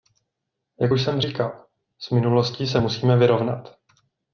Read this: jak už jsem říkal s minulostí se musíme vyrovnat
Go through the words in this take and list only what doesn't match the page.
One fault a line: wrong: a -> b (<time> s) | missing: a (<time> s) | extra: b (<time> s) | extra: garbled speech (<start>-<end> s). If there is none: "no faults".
no faults